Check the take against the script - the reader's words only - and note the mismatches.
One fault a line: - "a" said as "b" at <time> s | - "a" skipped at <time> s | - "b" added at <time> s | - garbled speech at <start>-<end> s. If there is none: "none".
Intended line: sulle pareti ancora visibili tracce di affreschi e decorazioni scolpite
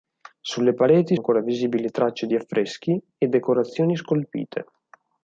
none